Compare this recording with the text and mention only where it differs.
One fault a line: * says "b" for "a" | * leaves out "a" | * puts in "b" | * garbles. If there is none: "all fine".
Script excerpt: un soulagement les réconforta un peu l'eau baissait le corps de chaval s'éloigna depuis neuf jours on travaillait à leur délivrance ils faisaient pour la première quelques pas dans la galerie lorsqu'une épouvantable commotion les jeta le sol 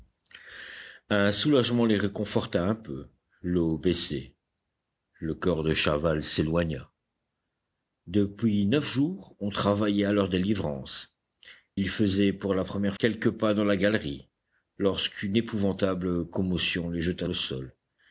all fine